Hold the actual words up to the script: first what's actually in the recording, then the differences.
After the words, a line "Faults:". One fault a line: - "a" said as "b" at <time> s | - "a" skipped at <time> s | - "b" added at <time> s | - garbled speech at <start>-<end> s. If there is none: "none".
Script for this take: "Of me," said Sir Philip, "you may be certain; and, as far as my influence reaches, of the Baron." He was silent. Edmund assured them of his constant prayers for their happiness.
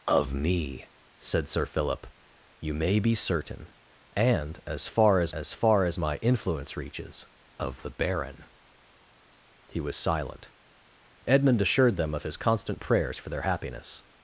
"Of me," said Sir Philip, "you may be certain; and, as far as as far as my influence reaches, of the Baron." He was silent. Edmund assured them of his constant prayers for their happiness.
Faults:
- "as far as" added at 5.3 s